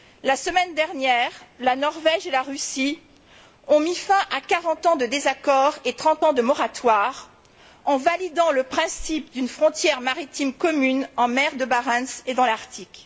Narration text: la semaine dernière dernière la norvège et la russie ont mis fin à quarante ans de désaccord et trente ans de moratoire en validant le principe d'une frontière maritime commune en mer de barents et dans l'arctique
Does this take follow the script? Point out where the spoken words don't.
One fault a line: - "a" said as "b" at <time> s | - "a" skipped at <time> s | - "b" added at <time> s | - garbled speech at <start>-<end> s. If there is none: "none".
- "dernière" skipped at 1.3 s